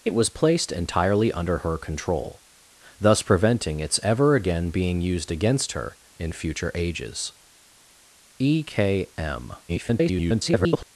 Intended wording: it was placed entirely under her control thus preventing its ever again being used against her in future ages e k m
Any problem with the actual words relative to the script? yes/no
yes